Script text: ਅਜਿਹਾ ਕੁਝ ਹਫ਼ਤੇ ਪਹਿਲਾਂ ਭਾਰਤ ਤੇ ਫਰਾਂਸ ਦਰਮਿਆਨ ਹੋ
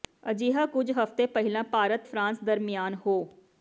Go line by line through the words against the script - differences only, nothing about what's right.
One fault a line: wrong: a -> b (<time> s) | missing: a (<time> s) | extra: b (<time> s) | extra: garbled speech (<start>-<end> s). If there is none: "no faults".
missing: ਤੇ (2.0 s)